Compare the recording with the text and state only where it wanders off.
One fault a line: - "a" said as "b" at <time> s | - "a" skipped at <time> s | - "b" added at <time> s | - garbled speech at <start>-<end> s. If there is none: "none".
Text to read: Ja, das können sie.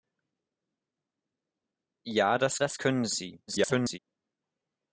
- "das" added at 2.6 s
- garbled speech at 3.5-4.0 s